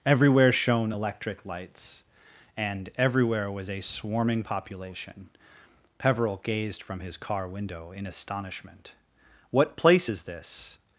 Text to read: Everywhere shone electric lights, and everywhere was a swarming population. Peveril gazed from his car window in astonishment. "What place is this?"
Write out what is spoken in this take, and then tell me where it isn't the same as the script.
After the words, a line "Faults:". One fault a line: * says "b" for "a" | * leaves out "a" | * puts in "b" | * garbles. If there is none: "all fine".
Everywhere shone electric lights, and everywhere was a swarming population. Peveril gazed from his car window in astonishment. "What place is this?"
Faults:
all fine